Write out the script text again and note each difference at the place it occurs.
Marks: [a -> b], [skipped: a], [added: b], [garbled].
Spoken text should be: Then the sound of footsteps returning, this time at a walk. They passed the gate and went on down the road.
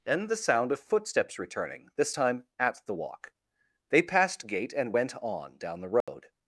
Then the sound of footsteps returning, this time at [a -> the] walk. They passed [skipped: the] gate and went on down the road.